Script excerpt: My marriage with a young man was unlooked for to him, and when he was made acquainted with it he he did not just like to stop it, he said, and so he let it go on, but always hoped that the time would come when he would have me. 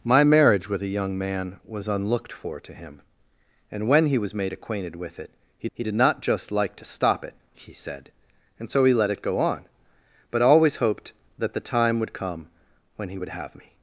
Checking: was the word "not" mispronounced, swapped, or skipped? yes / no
no